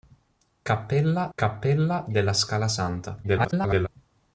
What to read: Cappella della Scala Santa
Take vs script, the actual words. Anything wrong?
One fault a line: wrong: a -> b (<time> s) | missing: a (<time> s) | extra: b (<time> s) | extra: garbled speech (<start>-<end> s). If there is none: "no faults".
extra: cappella (1.4 s)
extra: garbled speech (3.2-3.9 s)